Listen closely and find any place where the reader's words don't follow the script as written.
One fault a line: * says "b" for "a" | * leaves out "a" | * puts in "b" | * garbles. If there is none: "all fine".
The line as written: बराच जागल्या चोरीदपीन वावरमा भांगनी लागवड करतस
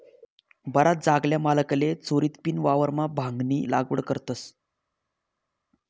* puts in "मालकले"